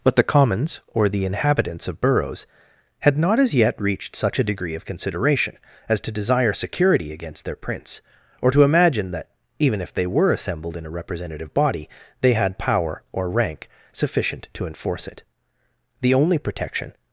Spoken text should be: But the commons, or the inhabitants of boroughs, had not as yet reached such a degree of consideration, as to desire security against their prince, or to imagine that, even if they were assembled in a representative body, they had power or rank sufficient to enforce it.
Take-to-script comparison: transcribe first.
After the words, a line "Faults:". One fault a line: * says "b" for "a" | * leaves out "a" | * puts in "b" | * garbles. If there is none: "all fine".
But the commons, or the inhabitants of boroughs, had not as yet reached such a degree of consideration, as to desire security against their prince, or to imagine that, even if they were assembled in a representative body, they had power or rank sufficient to enforce it. The only protection
Faults:
* puts in "The only protection"